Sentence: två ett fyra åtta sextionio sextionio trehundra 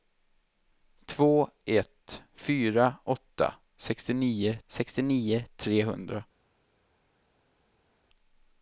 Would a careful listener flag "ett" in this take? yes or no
no